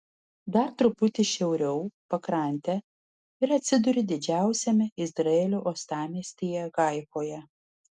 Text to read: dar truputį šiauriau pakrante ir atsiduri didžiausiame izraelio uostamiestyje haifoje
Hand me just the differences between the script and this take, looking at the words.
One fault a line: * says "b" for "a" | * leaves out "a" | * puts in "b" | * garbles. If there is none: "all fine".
all fine